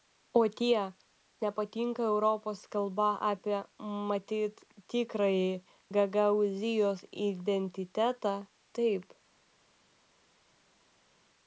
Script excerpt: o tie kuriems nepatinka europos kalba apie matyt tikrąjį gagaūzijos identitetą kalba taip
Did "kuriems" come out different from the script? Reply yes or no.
yes